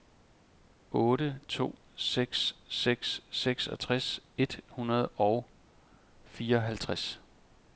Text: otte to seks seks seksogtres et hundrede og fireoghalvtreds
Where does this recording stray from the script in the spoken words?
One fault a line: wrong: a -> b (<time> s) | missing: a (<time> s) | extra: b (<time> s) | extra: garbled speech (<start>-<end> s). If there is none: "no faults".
no faults